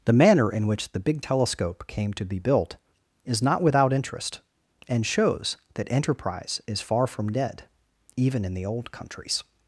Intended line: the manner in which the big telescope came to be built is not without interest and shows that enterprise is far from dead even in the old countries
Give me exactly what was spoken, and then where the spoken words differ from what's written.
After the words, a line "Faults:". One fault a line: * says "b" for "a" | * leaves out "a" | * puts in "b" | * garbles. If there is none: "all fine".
the manner in which the big telescope came to be built is not without interest and shows that enterprise is far from dead even in the old countries
Faults:
all fine